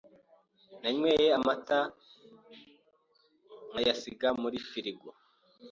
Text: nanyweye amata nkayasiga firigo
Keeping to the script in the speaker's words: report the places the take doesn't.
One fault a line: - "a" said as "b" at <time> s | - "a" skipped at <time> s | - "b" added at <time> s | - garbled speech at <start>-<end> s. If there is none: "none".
- "muri" added at 4.4 s